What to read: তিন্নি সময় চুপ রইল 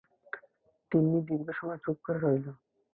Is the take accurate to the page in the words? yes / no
no